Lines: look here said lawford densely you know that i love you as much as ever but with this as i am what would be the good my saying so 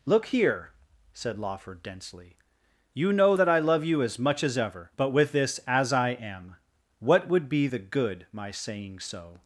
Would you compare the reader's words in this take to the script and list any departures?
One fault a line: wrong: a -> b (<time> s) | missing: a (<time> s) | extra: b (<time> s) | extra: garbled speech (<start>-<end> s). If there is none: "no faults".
no faults